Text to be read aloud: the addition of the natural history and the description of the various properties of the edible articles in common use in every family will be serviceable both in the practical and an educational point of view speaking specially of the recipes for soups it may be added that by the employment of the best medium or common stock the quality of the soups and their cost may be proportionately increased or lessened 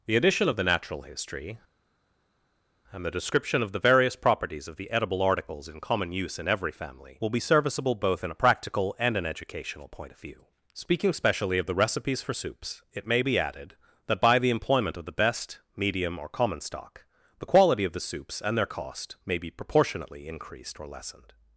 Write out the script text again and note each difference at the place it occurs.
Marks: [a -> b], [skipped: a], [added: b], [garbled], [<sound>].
the addition of the natural history and the description of the various properties of the edible articles in common use in every family will be serviceable both in [the -> a] practical and an educational point of view speaking specially of the recipes for soups it may be added that by the employment of the best medium or common stock the quality of the soups and their cost may be proportionately increased or lessened